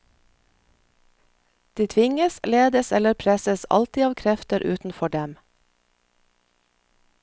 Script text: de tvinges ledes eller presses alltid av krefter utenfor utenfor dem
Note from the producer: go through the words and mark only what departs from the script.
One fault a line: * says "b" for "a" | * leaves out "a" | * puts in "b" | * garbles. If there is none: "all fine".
* leaves out "utenfor"